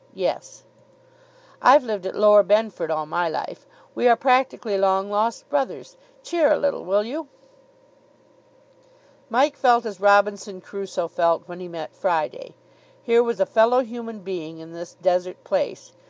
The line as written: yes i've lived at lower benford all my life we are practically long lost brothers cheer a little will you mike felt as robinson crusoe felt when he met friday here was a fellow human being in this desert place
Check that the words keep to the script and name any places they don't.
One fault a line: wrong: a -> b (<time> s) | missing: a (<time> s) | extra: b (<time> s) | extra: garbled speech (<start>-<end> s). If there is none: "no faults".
no faults